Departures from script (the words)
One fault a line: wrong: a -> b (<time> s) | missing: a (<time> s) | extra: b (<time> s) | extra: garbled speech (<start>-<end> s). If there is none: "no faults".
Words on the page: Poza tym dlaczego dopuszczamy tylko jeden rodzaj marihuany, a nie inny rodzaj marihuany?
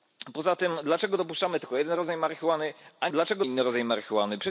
wrong: nie -> dlaczego (3.1 s)